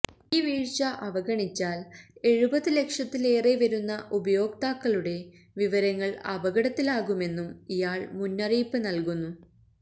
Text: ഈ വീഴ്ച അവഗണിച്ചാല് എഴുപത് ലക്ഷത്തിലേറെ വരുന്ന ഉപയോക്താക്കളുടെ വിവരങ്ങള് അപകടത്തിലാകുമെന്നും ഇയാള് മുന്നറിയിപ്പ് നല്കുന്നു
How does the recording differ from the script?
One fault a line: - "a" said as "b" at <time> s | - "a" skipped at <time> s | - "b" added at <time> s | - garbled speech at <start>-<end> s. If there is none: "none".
none